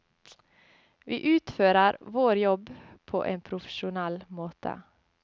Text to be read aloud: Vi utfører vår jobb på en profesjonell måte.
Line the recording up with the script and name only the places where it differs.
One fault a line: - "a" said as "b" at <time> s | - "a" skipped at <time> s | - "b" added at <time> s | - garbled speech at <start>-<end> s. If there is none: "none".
none